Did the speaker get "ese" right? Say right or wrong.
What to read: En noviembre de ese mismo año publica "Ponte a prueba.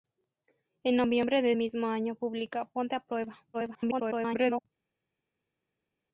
wrong